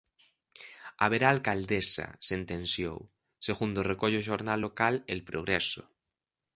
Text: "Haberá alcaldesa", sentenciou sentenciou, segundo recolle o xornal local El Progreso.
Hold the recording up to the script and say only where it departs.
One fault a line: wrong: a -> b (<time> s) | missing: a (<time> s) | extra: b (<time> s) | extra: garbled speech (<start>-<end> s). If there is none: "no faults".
missing: sentenciou (3.0 s)